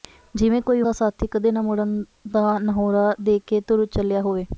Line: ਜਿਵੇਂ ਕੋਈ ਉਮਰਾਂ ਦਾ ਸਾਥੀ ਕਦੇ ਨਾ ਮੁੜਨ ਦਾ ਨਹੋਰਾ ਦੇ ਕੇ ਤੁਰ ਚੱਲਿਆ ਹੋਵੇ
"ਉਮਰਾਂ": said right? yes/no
no